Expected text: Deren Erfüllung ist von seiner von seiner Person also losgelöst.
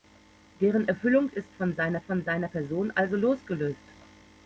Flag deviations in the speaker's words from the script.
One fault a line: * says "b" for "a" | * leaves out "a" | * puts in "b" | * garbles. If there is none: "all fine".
all fine